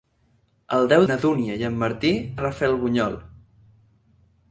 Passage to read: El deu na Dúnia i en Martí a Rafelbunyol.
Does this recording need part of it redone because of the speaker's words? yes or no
no